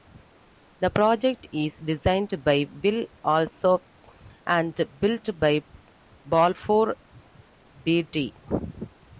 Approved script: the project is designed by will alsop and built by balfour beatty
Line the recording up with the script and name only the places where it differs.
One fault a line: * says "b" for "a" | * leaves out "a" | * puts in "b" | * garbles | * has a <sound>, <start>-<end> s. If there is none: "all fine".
all fine